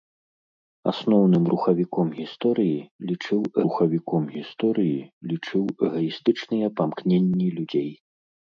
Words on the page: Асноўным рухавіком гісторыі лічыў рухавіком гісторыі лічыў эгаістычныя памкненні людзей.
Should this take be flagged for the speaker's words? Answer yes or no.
no